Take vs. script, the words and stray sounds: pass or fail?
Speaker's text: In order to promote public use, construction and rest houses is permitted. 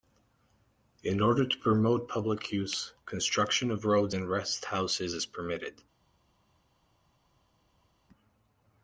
fail